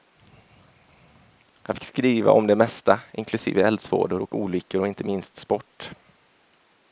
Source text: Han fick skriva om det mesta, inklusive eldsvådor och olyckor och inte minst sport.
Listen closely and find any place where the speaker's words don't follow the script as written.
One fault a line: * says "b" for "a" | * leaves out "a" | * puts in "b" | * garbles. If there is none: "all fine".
all fine